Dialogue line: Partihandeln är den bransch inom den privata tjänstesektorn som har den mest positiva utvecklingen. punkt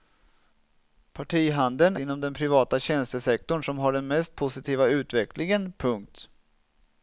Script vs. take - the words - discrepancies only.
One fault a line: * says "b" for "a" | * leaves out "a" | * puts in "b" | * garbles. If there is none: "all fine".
* leaves out "är den bransch"